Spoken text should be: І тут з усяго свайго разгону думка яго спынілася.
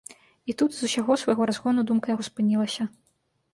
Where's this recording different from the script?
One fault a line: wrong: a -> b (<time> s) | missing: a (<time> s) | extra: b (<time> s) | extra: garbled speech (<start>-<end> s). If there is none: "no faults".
no faults